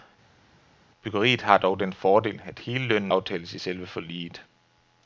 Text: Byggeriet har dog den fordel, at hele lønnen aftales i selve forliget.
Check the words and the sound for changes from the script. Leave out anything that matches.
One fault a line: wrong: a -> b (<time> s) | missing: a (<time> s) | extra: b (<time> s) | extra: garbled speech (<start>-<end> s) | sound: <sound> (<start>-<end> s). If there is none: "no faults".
no faults